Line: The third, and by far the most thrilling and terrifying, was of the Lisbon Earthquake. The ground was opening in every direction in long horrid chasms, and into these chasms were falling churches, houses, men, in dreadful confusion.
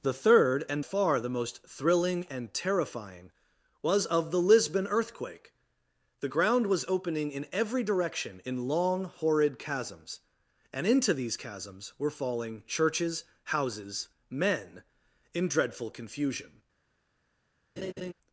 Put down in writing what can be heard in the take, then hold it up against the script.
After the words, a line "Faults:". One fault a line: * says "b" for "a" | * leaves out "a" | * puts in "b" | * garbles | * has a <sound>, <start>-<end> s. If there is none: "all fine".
The third, and far the most thrilling and terrifying, was of the Lisbon Earthquake. The ground was opening in every direction in long horrid chasms, and into these chasms were falling churches, houses, men, in dreadful confusion.
Faults:
* leaves out "by"
* has a laugh, 17.8-18.1 s